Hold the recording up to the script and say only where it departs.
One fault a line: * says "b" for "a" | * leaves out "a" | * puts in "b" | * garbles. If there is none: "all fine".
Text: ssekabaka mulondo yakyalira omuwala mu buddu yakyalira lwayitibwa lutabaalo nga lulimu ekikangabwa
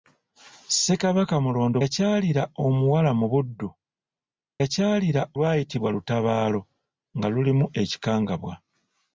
all fine